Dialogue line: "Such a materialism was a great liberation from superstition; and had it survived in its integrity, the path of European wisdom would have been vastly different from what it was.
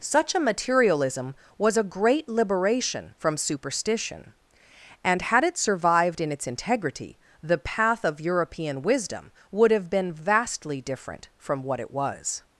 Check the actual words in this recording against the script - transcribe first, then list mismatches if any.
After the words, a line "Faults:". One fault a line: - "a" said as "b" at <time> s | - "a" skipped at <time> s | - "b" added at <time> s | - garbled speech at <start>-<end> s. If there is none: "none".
"Such a materialism was a great liberation from superstition; and had it survived in its integrity, the path of European wisdom would have been vastly different from what it was.
Faults:
none